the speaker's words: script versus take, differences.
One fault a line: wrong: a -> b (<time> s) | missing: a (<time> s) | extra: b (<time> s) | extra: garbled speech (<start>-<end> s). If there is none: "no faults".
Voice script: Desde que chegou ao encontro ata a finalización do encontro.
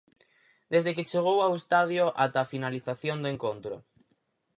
wrong: encontro -> estadio (1.6 s)